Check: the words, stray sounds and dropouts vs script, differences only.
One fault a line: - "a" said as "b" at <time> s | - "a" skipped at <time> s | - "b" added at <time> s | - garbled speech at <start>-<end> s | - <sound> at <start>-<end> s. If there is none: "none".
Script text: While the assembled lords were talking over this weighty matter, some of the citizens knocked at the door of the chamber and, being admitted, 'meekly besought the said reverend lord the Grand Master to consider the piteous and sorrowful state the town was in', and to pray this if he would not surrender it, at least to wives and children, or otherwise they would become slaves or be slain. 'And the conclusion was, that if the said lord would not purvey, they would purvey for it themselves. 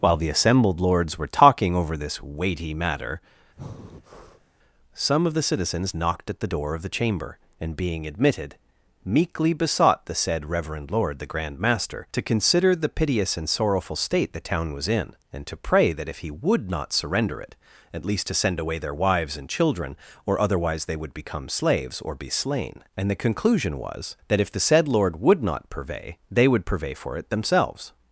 - breath at 3.6-4.5 s
- "this" said as "that" at 15.9 s
- "send away their" added at 18.3 s